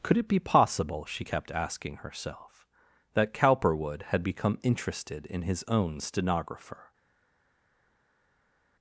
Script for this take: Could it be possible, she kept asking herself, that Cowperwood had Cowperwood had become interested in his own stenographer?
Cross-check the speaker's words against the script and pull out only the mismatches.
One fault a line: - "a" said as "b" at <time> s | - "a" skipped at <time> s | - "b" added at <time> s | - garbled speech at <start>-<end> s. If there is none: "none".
- "Cowperwood had" skipped at 4.2 s